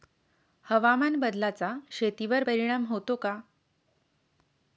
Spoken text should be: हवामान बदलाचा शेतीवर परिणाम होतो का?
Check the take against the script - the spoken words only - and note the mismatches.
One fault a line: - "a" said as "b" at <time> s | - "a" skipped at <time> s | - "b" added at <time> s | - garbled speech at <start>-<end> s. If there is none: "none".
none